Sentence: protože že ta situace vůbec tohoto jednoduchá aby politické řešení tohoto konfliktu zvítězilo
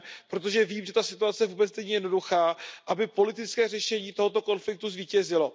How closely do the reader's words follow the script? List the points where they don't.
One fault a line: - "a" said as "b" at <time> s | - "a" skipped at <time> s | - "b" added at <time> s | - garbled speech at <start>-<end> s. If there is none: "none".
- "vím" added at 0.7 s
- "tohoto" said as "není" at 1.8 s